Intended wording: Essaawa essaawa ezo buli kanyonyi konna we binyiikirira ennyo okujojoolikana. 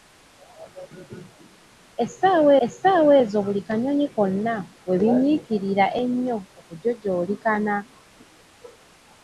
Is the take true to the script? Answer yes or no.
yes